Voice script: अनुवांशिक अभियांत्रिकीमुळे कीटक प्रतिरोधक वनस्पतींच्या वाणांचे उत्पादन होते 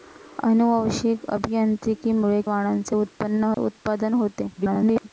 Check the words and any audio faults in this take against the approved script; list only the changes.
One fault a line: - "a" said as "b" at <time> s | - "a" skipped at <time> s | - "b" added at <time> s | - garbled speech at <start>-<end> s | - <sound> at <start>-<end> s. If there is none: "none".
- "कीटक प्रतिरोधक वनस्पतींच्या" skipped at 2.4 s
- dropout at 3.5-3.6 s
- garbled speech at 4.5-5.1 s